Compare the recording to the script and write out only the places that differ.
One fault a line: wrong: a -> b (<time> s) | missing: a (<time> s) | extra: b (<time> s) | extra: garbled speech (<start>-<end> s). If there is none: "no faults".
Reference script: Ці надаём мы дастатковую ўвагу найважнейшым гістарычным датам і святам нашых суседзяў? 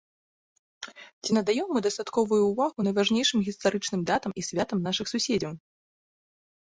no faults